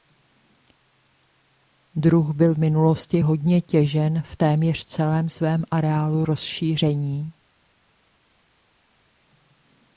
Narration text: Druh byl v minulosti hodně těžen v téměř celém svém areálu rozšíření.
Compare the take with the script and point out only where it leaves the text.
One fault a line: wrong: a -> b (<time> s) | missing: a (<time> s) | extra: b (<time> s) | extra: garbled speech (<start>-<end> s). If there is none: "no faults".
no faults